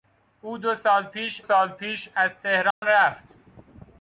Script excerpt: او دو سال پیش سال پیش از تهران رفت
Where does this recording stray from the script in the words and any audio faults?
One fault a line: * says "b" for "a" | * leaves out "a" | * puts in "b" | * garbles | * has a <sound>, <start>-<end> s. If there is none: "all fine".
* has a dropout, 2.7-2.8 s